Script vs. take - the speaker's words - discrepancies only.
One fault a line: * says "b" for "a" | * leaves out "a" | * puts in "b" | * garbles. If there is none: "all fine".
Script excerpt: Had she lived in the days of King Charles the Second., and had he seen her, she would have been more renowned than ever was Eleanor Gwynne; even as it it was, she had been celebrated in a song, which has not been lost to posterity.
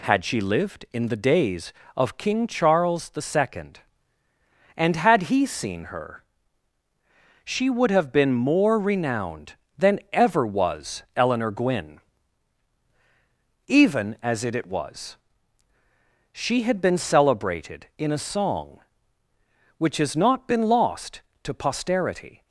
all fine